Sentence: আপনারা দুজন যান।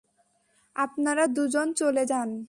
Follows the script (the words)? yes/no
no